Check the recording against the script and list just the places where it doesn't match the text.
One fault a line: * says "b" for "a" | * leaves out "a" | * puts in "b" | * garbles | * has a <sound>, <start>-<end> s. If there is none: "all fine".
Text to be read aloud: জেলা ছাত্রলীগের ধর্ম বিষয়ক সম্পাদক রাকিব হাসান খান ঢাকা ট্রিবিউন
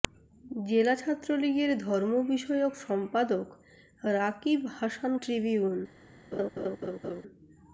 * leaves out "খান ঢাকা"
* has a laugh, 6.3-7.2 s